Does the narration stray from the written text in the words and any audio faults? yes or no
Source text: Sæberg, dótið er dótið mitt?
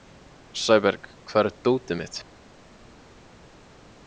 yes